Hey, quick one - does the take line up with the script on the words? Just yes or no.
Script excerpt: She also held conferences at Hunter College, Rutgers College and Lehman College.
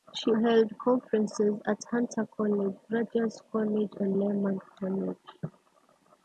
no